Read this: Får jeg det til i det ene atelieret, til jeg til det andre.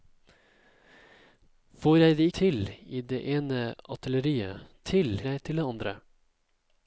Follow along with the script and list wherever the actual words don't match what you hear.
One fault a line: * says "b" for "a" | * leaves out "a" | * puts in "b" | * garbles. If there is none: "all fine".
all fine